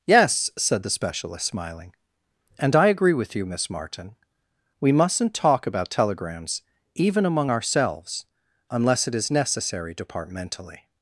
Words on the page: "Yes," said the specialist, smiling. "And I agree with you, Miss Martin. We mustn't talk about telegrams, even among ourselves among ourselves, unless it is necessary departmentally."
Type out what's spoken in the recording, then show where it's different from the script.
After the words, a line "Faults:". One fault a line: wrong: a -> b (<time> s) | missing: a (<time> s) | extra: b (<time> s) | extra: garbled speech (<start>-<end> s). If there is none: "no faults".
"Yes," said the specialist, smiling. "And I agree with you, Miss Martin. We mustn't talk about telegrams, even among ourselves, unless it is necessary departmentally."
Faults:
missing: among ourselves (8.3 s)